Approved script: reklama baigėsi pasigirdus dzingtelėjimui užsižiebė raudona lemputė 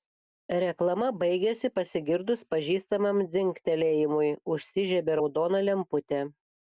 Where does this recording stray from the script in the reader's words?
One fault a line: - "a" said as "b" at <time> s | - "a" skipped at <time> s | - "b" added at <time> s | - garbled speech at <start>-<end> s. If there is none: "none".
- "pažįstamam" added at 2.5 s